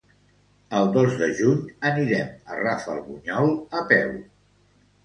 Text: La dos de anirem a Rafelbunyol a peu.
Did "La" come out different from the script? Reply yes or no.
yes